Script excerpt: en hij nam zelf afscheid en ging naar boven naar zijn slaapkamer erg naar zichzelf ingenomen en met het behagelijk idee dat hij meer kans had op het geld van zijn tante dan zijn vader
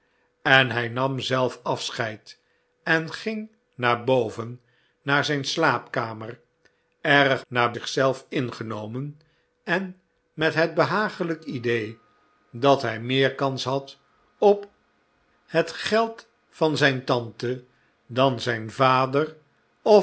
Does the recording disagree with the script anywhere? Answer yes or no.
no